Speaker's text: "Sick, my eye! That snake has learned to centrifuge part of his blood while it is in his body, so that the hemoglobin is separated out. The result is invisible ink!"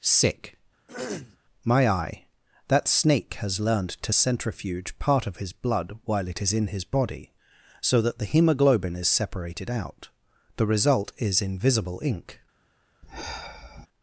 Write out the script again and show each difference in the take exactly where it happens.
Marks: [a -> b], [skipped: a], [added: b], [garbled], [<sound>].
"Sick, [throat clearing] my eye! That snake has learned to centrifuge part of his blood while it is in his body, so that the hemoglobin is separated out. The result is invisible ink!" [sigh]